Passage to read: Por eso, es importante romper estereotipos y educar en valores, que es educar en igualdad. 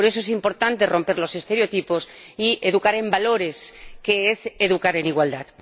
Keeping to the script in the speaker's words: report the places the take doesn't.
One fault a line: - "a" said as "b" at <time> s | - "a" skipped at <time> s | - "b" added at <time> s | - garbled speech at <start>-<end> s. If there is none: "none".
- "los" added at 1.2 s